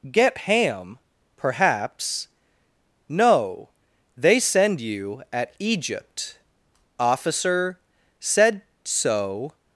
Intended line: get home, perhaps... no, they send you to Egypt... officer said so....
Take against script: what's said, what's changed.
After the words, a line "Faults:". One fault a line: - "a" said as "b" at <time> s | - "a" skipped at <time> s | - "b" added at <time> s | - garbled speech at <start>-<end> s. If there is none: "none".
get ham, perhaps... no, they send you at Egypt... officer said so....
Faults:
- "home" said as "ham" at 0.4 s
- "to" said as "at" at 5.3 s